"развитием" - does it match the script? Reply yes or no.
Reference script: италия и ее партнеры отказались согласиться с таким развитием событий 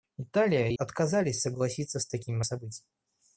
no